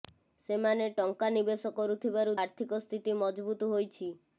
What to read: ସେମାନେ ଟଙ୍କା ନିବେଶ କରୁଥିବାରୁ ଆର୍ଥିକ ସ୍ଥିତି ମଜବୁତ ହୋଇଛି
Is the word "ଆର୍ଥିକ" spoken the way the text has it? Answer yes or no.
yes